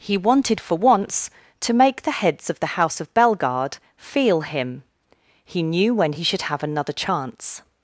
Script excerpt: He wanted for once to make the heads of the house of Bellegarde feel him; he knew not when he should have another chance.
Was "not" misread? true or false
true